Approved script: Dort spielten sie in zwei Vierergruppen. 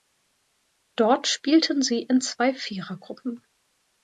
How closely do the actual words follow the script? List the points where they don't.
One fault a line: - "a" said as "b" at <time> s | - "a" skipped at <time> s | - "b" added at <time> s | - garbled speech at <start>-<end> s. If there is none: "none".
none